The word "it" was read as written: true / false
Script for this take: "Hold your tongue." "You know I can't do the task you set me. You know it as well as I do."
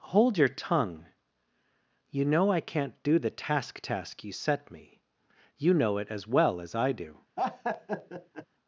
true